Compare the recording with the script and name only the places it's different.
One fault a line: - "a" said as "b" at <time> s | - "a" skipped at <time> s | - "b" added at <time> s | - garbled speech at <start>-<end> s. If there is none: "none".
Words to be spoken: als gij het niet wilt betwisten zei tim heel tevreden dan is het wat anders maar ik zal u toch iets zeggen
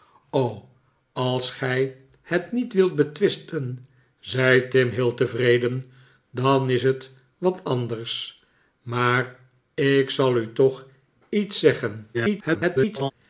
- garbled speech at 12.1-13.1 s